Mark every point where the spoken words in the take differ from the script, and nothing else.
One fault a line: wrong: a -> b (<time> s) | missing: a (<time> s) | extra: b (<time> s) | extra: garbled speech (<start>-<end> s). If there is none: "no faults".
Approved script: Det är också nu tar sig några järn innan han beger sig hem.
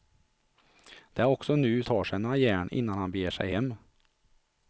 no faults